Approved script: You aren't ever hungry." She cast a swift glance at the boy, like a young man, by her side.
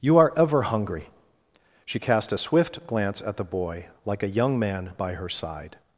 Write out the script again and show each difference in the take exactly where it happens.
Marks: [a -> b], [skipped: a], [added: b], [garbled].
You [aren't -> are] ever hungry." She cast a swift glance at the boy, like a young man, by her side.